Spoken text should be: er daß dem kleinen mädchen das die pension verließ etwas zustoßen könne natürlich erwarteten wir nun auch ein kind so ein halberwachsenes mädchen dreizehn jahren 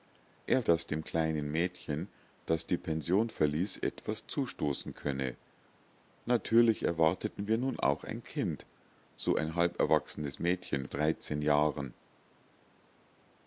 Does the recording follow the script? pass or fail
pass